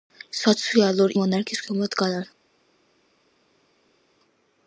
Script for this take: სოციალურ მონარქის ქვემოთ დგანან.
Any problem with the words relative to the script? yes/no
no